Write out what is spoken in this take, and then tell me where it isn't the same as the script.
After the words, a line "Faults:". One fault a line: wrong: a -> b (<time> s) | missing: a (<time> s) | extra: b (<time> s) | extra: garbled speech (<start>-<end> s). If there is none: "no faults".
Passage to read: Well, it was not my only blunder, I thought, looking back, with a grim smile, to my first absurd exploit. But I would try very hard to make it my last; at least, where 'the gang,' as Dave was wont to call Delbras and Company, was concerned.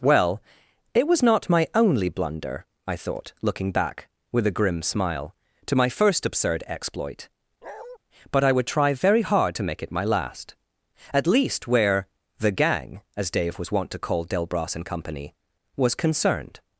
Well, it was not my only blunder, I thought, looking back, with a grim smile, to my first absurd exploit. But I would try very hard to make it my last; at least, where 'the gang,' as Dave was wont to call Delbras and Company, was concerned.
Faults:
no faults